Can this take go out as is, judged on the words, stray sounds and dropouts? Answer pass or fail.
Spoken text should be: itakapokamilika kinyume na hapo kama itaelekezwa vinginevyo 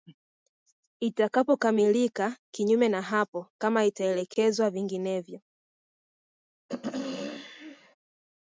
fail